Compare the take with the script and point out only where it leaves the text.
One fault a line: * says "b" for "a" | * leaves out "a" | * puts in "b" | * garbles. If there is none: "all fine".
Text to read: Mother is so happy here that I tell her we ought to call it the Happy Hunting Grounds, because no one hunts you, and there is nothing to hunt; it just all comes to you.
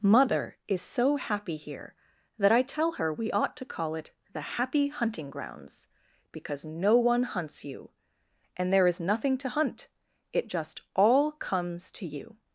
all fine